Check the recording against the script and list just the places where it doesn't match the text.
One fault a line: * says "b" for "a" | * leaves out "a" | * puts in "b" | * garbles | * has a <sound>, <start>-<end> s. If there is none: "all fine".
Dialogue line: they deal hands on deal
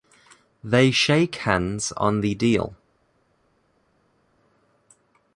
* says "shake" for "deal"
* puts in "the"